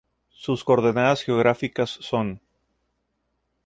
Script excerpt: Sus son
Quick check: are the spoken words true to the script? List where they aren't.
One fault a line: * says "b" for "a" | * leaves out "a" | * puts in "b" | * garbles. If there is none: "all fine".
* puts in "coordenadas geográficas"